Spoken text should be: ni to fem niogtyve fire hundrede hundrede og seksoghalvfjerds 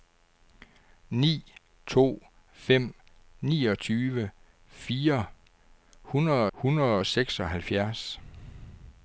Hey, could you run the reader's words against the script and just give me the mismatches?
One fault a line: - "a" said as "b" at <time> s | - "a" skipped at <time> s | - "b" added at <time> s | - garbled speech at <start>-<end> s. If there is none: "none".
none